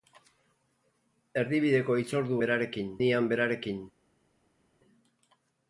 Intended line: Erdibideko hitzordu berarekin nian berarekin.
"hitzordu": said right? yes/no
yes